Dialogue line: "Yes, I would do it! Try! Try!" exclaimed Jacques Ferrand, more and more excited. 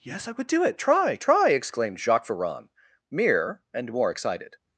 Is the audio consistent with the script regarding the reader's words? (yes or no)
no